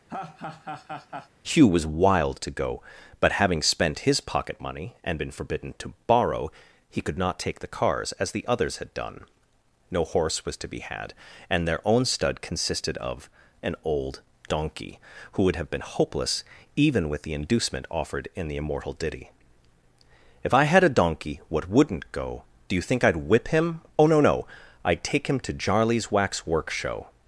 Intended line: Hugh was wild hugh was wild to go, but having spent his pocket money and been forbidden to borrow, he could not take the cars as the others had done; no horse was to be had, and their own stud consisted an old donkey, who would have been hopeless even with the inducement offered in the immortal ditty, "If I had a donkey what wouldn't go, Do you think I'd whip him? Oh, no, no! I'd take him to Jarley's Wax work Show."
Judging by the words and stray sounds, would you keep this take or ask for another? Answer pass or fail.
fail